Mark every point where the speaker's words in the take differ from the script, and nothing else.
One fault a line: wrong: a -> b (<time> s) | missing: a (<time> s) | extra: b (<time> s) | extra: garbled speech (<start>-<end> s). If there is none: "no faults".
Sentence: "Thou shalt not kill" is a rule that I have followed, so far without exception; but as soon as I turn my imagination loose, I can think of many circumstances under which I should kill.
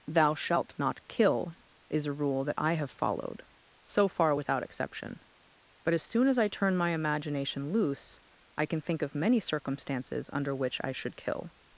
no faults